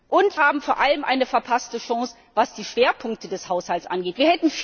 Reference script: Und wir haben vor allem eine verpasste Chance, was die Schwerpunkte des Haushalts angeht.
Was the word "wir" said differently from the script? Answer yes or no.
yes